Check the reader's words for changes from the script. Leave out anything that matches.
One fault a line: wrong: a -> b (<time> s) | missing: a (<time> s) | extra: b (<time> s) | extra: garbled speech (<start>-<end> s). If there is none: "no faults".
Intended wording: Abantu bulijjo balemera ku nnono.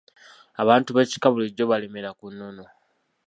extra: b'ekika (0.9 s)